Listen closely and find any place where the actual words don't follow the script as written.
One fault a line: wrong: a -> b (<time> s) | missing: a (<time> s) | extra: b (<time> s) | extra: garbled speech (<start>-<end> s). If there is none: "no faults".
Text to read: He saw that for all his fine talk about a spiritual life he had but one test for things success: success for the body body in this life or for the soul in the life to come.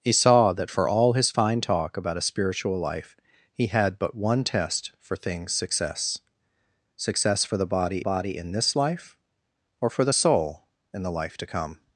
no faults